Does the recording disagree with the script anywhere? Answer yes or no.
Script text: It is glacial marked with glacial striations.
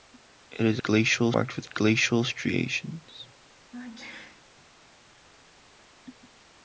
no